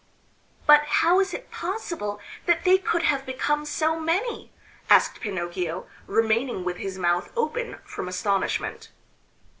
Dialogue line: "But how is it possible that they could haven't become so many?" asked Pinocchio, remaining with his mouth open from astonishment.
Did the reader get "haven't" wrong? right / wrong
wrong